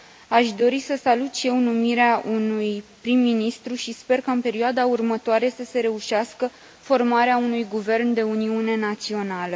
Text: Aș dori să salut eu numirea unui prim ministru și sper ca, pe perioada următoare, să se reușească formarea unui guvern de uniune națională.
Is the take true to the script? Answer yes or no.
no